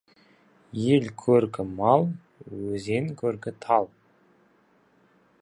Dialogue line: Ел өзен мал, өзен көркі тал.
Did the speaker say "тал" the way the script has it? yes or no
yes